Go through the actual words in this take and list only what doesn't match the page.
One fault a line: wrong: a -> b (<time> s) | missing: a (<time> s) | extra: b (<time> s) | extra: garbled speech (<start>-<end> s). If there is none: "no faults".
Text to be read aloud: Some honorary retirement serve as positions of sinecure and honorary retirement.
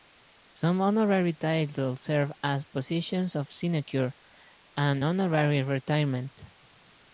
wrong: retirement -> titles (1.3 s)